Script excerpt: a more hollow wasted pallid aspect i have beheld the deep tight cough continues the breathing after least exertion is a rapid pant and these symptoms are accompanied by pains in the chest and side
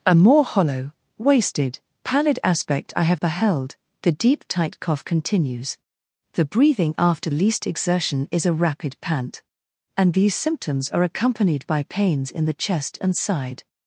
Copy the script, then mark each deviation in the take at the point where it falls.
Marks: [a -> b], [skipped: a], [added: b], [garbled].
a more hollow wasted pallid aspect i have beheld the deep tight cough continues the breathing after least exertion is a rapid pant and these symptoms are accompanied by pains in the chest and side